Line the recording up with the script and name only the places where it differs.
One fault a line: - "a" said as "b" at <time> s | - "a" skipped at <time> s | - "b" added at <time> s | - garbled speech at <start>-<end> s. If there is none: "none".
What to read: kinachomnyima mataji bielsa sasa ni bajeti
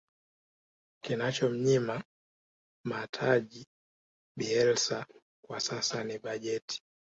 - "kwa" added at 5.5 s